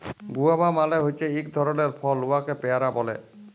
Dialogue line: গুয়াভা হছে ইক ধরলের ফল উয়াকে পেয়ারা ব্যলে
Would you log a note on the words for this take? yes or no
yes